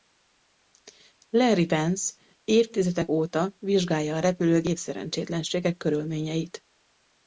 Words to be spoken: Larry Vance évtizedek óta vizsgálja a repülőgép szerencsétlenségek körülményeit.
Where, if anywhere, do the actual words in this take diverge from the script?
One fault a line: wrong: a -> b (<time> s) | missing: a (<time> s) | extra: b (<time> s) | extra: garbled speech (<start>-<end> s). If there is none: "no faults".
no faults